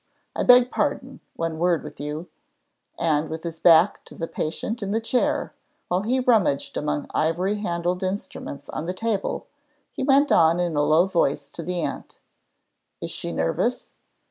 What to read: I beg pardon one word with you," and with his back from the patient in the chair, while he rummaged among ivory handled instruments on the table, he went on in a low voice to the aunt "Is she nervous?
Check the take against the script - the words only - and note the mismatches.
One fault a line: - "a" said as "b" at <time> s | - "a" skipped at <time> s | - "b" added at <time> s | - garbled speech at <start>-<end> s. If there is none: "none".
- "from" said as "to" at 4.0 s